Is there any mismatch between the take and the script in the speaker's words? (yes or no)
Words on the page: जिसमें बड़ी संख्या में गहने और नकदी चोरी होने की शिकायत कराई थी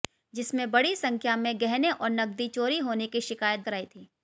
no